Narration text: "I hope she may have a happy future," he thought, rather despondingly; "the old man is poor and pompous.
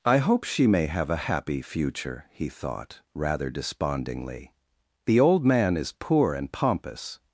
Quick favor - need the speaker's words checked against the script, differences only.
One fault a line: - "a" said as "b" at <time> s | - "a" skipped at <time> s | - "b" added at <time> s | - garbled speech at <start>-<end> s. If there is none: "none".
none